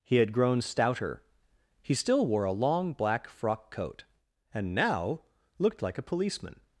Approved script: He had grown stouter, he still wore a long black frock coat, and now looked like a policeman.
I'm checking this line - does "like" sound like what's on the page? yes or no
yes